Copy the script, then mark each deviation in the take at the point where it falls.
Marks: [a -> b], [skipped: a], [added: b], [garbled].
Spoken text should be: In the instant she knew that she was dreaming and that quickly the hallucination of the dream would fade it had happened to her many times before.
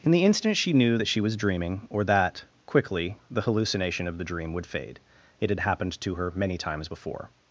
In the instant she knew that she was dreaming [and -> or] that quickly the hallucination of the dream would fade it had happened to her many times before.